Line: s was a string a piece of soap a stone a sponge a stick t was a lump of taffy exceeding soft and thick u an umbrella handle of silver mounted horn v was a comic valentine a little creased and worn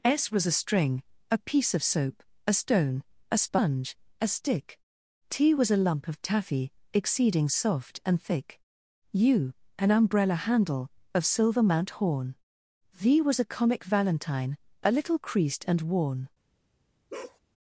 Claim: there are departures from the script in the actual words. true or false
true